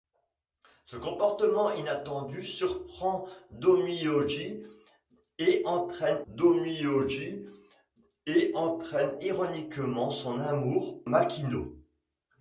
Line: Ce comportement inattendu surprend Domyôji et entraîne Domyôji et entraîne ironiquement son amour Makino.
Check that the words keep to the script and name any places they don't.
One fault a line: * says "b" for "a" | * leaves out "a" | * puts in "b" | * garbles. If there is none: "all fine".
all fine